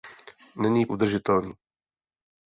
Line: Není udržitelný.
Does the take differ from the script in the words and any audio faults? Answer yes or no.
no